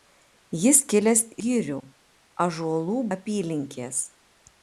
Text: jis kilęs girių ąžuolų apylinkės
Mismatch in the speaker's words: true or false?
false